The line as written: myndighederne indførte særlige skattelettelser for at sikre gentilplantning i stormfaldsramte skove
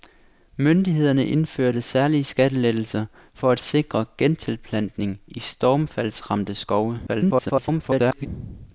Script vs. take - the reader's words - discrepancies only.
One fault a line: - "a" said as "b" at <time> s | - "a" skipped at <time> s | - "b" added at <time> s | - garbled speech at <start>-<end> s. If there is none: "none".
- garbled speech at 7.1-8.3 s